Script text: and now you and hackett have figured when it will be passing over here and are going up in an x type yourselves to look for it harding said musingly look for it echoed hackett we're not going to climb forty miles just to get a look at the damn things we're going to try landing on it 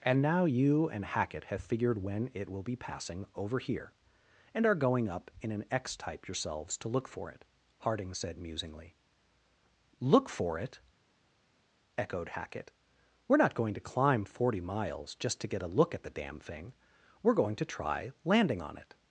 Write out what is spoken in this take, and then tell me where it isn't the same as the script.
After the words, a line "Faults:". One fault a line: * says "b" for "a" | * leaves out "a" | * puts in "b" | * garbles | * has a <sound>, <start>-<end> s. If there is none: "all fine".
and now you and hackett have figured when it will be passing over here and are going up in an x type yourselves to look for it harding said musingly look for it echoed hackett we're not going to climb forty miles just to get a look at the damn thing we're going to try landing on it
Faults:
* says "thing" for "things"